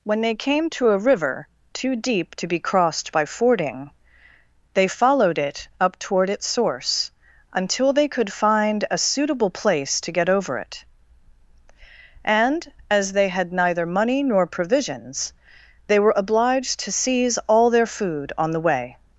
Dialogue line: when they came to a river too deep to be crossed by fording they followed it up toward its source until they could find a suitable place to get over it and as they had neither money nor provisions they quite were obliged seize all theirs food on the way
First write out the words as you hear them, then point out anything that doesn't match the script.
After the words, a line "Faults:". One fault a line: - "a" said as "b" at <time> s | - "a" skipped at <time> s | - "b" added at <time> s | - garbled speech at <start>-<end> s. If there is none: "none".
when they came to a river too deep to be crossed by fording they followed it up toward its source until they could find a suitable place to get over it and as they had neither money nor provisions they were obliged to seize all their food on the way
Faults:
- "quite" skipped at 16.0 s
- "to" added at 16.8 s
- "theirs" said as "their" at 17.7 s